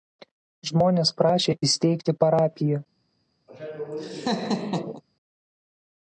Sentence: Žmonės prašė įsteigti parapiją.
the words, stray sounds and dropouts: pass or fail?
fail